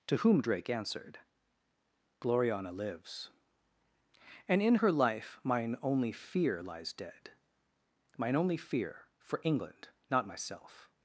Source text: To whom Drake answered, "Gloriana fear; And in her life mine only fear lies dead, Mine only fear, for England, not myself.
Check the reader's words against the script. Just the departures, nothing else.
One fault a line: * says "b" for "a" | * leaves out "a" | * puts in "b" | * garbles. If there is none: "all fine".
* says "lives" for "fear"